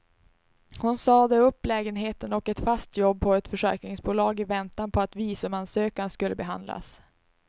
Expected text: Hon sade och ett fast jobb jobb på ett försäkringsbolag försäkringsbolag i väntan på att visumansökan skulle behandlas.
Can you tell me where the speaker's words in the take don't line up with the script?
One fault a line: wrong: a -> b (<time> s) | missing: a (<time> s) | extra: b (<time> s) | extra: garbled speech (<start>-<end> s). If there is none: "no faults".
extra: upp lägenheten (1.4 s)
missing: jobb (3.2 s)
missing: försäkringsbolag (4.4 s)